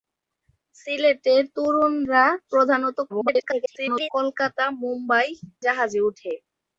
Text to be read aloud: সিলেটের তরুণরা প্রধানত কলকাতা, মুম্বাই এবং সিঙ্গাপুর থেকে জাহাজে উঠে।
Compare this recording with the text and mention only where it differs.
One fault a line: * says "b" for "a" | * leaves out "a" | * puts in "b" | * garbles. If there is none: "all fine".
* garbles
* leaves out "এবং সিঙ্গাপুর থেকে"